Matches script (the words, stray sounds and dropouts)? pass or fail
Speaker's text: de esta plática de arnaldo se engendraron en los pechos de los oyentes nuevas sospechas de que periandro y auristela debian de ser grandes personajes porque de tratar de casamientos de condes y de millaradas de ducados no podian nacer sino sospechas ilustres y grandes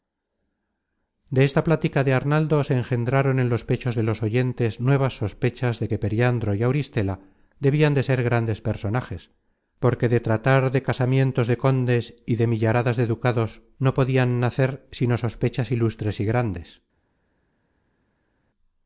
pass